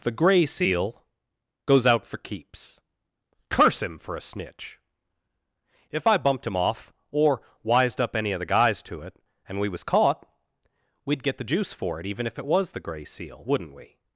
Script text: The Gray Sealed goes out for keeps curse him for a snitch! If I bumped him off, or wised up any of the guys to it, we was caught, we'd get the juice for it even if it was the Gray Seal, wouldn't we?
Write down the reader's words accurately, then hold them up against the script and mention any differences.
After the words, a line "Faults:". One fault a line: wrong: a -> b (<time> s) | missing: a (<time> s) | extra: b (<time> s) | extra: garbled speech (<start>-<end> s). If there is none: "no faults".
The Gray Seal goes out for keeps curse him for a snitch! If I bumped him off, or wised up any of the guys to it, and we was caught, we'd get the juice for it even if it was the Gray Seal, wouldn't we?
Faults:
wrong: Sealed -> Seal (0.5 s)
extra: and (9.5 s)